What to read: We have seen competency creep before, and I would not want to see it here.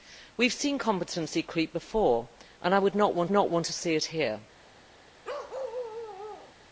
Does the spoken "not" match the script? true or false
true